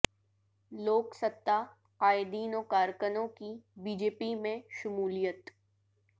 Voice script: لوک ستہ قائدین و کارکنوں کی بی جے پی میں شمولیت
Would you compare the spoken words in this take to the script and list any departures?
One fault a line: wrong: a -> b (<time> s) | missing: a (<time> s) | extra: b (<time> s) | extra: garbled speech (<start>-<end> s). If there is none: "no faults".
no faults